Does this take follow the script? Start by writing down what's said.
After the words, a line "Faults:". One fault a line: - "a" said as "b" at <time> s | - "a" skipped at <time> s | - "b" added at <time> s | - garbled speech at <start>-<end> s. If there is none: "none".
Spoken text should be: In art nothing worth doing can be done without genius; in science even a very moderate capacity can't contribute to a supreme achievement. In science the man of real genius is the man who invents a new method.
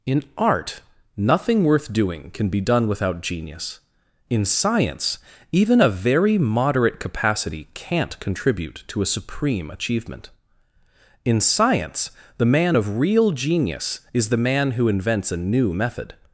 In art nothing worth doing can be done without genius; in science even a very moderate capacity can't contribute to a supreme achievement. In science the man of real genius is the man who invents a new method.
Faults:
none